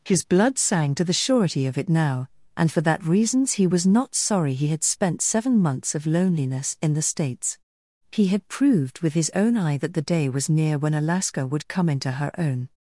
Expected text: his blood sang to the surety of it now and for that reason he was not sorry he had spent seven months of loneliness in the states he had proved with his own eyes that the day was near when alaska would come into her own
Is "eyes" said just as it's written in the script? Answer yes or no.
no